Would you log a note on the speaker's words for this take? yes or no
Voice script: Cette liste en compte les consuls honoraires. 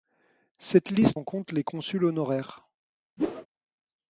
no